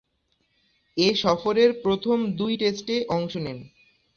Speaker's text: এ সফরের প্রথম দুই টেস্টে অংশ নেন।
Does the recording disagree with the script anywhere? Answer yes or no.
no